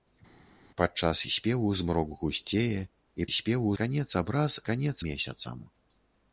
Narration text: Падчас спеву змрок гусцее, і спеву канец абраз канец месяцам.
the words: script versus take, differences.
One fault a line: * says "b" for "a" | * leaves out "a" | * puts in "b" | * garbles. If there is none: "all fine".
all fine